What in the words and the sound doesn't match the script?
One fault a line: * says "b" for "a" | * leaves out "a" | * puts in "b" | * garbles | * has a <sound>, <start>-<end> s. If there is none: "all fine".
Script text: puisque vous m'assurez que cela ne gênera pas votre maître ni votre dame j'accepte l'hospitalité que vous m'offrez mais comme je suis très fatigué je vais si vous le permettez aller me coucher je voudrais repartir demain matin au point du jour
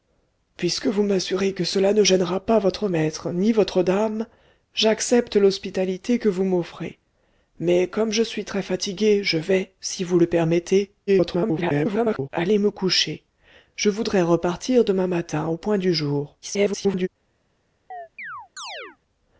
* garbles
* garbles
* has a chirp, 17.9-19.0 s